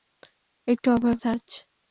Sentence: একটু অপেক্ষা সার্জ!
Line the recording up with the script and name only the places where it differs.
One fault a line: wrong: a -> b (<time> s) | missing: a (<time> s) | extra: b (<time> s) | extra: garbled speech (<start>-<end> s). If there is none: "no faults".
no faults